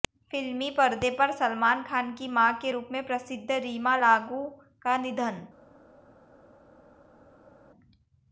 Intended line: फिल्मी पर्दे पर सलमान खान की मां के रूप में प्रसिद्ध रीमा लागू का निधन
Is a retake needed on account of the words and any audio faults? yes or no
no